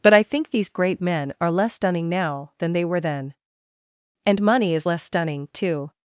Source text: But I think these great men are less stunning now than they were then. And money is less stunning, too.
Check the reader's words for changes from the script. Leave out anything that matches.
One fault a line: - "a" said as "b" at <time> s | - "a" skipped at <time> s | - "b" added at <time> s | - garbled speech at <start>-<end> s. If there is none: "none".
none